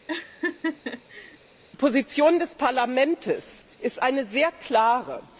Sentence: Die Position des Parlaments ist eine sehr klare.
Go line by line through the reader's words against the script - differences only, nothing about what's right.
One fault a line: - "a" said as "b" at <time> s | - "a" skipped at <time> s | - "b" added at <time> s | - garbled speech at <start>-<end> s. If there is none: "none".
none